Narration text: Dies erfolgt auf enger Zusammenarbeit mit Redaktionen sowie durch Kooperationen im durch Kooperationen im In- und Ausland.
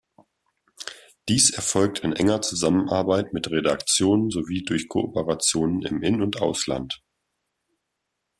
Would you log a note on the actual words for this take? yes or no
yes